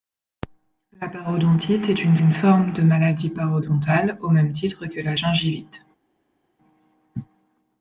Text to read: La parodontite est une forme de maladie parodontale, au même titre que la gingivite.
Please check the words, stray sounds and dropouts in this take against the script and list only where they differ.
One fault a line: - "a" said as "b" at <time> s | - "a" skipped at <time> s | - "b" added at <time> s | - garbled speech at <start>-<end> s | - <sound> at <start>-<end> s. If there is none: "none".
- "une" added at 2.2 s